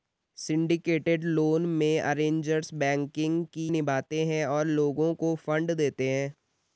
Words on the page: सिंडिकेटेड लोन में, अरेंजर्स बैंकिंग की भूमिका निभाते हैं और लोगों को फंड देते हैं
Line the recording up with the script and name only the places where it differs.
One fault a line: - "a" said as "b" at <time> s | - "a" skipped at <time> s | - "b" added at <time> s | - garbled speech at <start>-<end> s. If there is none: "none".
- "भूमिका" skipped at 3.7 s